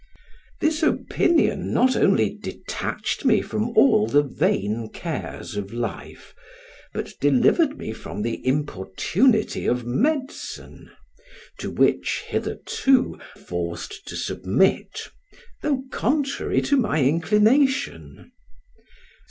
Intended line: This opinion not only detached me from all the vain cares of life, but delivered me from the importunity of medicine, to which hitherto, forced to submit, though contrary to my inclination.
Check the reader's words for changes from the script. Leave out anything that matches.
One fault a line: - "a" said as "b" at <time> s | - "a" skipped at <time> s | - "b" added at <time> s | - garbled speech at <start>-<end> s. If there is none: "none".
none